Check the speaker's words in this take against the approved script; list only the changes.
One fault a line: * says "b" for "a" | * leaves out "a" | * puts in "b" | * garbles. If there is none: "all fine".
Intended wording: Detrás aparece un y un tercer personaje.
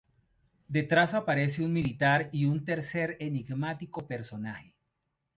* puts in "militar"
* puts in "enigmático"